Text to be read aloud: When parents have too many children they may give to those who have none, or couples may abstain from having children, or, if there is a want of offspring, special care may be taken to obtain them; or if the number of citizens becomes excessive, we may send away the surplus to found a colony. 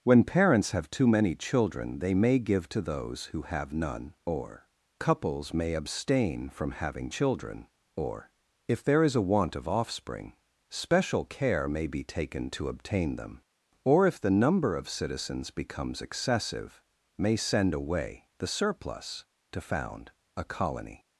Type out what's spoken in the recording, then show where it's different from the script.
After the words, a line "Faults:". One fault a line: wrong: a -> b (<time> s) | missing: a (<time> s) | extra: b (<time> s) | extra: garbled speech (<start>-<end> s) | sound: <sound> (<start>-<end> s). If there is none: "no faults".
When parents have too many children they may give to those who have none, or couples may abstain from having children, or, if there is a want of offspring, special care may be taken to obtain them; or if the number of citizens becomes excessive, may send away the surplus to found a colony.
Faults:
missing: we (16.8 s)